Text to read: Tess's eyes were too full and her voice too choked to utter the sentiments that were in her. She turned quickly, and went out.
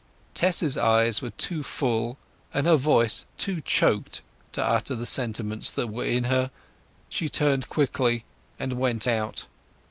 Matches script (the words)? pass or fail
pass